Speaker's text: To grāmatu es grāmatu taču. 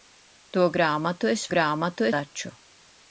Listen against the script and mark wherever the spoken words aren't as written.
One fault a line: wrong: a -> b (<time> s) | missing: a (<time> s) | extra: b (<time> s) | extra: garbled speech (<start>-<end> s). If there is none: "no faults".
no faults